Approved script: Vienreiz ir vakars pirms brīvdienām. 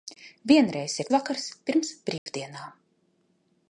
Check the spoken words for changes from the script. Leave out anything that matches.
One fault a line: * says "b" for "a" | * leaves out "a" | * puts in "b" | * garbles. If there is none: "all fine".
all fine